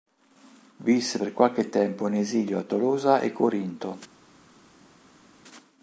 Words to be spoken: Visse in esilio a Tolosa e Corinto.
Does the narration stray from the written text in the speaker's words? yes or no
yes